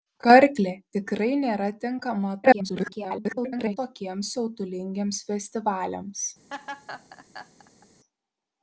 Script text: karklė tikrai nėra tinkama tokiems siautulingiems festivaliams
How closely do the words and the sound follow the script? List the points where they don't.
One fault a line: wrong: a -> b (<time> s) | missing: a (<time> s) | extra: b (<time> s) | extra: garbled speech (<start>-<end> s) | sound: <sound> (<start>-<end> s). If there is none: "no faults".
extra: garbled speech (2.4-3.8 s)
sound: laugh (6.5-7.9 s)